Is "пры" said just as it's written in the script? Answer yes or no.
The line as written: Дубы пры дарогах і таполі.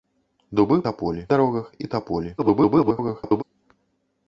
no